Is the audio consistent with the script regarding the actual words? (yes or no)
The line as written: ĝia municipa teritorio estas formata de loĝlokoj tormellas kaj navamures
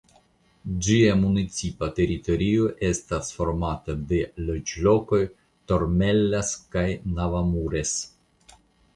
yes